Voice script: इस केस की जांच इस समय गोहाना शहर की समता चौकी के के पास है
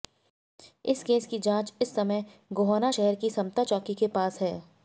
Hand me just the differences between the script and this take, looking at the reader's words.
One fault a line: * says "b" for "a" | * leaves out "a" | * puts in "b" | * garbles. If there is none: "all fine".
* leaves out "के"